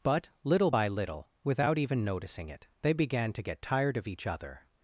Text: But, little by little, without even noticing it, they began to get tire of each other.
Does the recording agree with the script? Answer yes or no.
no